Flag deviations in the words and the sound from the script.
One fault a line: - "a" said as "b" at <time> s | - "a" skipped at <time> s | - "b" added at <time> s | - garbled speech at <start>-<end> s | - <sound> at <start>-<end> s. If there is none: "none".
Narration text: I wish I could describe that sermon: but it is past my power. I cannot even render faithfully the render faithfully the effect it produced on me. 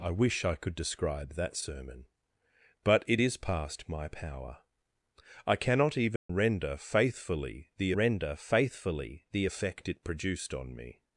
- dropout at 6.2-6.3 s